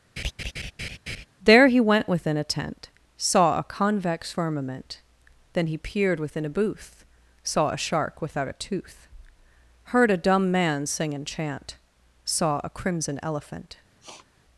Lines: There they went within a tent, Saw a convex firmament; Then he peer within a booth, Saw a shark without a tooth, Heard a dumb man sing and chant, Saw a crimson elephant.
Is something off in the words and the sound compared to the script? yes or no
yes